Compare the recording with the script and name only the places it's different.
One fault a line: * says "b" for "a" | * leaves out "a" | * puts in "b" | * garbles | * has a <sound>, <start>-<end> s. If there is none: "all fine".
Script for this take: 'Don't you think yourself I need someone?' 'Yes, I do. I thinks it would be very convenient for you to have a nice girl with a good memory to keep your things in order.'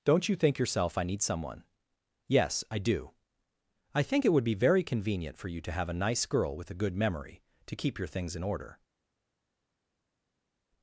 * says "think" for "thinks"